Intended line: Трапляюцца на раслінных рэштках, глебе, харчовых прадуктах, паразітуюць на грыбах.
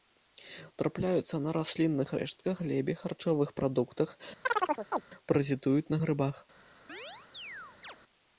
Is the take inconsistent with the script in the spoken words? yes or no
no